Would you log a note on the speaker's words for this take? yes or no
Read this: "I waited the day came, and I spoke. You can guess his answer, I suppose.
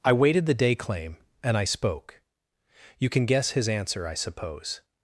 yes